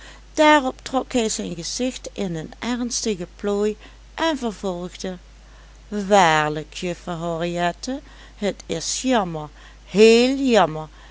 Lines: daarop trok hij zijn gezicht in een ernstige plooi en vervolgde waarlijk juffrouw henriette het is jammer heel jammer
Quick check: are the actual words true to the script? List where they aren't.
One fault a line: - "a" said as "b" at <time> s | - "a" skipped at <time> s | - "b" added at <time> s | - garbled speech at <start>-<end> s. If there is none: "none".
none